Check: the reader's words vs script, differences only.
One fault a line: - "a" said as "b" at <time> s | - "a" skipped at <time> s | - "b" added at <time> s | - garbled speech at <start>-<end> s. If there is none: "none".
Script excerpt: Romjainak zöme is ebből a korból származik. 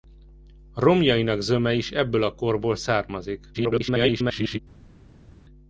- garbled speech at 3.5-4.6 s